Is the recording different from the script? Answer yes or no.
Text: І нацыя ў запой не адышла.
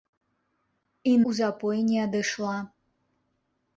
yes